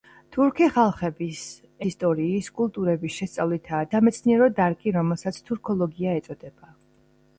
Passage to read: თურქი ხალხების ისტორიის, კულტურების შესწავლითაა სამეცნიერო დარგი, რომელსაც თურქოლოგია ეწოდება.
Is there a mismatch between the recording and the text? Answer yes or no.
no